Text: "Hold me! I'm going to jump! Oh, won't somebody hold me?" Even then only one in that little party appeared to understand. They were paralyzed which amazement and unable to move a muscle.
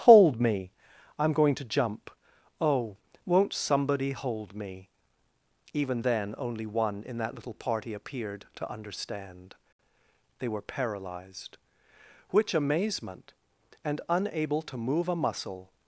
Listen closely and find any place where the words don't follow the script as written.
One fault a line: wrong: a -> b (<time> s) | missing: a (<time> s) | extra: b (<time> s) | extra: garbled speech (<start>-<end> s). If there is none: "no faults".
no faults